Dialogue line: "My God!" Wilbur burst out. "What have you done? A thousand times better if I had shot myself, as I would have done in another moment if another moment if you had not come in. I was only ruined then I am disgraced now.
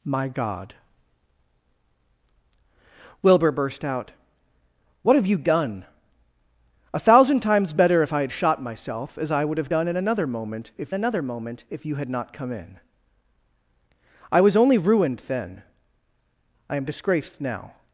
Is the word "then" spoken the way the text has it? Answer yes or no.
yes